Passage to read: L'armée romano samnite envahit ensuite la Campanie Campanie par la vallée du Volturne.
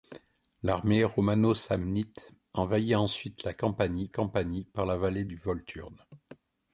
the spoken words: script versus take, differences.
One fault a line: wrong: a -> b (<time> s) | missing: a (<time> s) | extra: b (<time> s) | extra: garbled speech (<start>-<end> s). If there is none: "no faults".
no faults